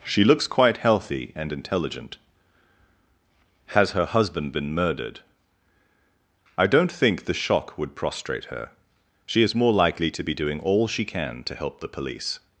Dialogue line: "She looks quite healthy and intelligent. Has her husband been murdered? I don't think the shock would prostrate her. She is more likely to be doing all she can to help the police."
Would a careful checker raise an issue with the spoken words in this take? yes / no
no